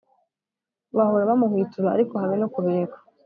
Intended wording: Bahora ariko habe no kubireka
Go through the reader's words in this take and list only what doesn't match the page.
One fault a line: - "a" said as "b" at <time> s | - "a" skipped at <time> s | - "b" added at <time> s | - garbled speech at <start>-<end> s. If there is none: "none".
- "bamuhwitura" added at 1.3 s